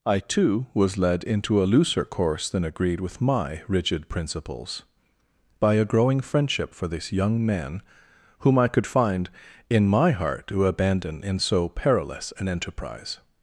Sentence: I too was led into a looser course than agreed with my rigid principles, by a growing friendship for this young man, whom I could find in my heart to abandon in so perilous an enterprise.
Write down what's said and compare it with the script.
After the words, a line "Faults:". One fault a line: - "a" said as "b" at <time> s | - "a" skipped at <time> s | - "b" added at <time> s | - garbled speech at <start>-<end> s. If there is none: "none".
I too was led into a looser course than agreed with my rigid principles, by a growing friendship for this young man, whom I could find in my heart to abandon in so perilous an enterprise.
Faults:
none